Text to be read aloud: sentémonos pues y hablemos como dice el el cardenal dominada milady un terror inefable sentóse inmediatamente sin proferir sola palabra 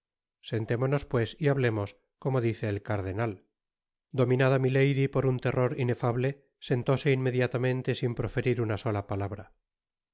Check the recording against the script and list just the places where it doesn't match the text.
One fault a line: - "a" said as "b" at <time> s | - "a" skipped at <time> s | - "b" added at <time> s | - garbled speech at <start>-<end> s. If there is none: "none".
- "el" skipped at 2.8 s
- "por" added at 5.1 s
- "una" added at 8.6 s